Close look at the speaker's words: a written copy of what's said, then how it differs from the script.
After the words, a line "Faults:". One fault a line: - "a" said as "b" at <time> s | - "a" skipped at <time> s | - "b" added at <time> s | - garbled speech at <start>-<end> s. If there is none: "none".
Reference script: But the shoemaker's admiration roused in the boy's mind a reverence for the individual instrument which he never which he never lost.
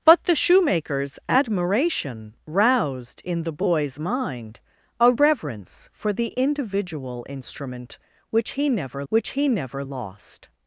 But the shoemaker's admiration roused in the boy's mind a reverence for the individual instrument which he never which he never lost.
Faults:
none